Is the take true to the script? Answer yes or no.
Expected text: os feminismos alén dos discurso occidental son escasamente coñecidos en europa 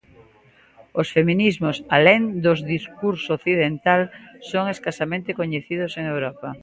yes